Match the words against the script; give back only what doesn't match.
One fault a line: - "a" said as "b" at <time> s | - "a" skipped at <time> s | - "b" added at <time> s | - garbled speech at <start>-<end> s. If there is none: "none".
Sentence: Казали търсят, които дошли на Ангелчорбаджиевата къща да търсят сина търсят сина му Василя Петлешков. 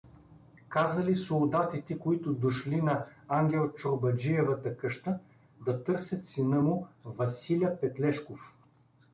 - "търсят" said as "солдатите" at 1.1 s
- "търсят сина" skipped at 6.6 s